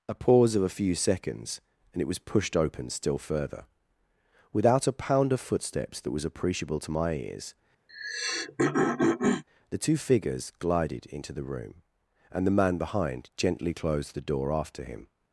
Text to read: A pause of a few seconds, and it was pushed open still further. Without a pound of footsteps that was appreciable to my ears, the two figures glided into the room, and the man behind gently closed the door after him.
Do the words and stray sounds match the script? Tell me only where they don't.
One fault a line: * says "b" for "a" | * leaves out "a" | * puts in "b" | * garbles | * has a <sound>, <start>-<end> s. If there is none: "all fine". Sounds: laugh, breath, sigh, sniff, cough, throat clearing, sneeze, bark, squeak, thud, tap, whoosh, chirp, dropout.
* has a throat clearing, 7.9-9.4 s